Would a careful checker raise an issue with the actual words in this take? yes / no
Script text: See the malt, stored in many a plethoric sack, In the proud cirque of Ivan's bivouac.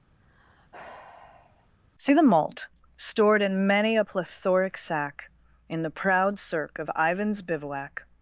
no